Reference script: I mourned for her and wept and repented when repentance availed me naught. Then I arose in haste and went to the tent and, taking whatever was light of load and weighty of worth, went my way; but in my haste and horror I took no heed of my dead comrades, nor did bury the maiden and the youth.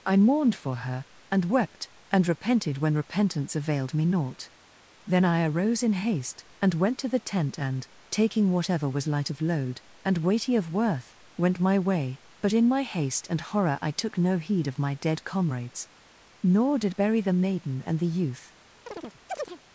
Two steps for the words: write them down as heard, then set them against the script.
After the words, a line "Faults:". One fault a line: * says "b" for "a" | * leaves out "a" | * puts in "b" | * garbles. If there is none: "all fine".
I mourned for her and wept and repented when repentance availed me naught. Then I arose in haste and went to the tent and, taking whatever was light of load and weighty of worth, went my way; but in my haste and horror I took no heed of my dead comrades, nor did bury the maiden and the youth.
Faults:
all fine